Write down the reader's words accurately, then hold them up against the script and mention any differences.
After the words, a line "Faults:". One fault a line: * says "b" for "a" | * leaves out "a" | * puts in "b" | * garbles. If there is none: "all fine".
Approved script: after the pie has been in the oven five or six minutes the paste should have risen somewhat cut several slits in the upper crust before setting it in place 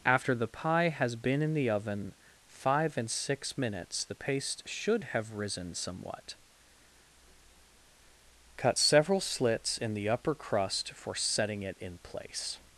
after the pie has been in the oven five and six minutes the paste should have risen somewhat cut several slits in the upper crust for setting it in place
Faults:
* says "and" for "or"
* says "for" for "before"